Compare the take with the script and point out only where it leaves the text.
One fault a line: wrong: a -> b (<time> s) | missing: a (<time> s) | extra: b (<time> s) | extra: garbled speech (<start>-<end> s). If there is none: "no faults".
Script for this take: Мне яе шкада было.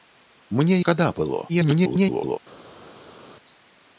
missing: яе (0.8 s)
extra: garbled speech (1.5-2.4 s)